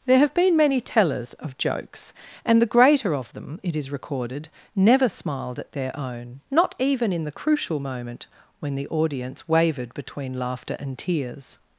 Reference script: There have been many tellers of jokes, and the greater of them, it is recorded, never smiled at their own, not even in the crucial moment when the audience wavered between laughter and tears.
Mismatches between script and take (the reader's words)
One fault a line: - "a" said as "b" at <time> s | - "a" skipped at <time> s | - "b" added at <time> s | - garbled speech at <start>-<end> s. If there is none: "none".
none